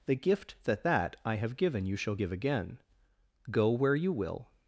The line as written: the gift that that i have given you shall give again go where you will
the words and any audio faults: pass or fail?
pass